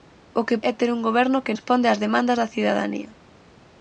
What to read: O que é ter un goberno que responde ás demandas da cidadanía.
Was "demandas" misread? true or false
false